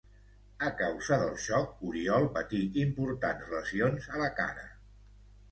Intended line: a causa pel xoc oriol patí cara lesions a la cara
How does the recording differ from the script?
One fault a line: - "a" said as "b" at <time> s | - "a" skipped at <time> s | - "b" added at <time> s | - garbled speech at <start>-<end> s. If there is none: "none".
- "pel" said as "del" at 1.2 s
- "cara" said as "importants" at 2.9 s